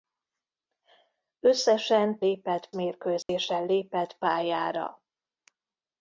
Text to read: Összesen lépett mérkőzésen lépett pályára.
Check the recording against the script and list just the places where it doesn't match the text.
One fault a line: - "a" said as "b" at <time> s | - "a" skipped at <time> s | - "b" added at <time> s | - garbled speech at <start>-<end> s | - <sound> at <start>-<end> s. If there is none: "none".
- dropout at 3.2-3.3 s